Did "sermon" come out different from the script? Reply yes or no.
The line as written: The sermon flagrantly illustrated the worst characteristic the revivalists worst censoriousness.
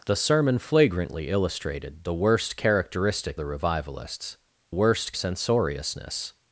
no